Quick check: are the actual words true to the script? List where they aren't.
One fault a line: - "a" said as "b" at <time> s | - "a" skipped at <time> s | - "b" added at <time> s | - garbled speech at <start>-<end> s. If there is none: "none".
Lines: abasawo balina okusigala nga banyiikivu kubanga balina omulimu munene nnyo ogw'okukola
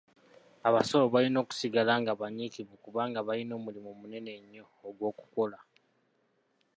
none